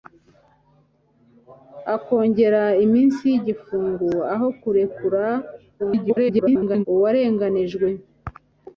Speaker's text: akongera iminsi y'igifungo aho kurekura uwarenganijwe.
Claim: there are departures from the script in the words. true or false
true